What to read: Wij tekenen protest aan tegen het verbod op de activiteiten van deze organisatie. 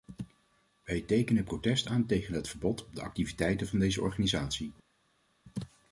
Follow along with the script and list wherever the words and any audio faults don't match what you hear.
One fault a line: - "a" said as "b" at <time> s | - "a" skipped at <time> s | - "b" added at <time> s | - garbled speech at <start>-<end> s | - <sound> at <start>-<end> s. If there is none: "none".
none